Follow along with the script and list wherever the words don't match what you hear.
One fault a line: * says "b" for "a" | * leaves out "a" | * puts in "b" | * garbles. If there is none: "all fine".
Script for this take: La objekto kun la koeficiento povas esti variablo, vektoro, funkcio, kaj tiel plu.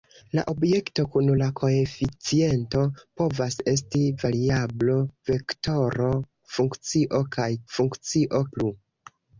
* says "funkcio" for "tiel"